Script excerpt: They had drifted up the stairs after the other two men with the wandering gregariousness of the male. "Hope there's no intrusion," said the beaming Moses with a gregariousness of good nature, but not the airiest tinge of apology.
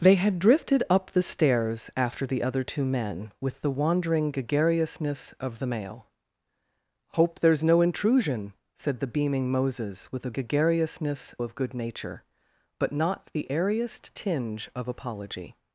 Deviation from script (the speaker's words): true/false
false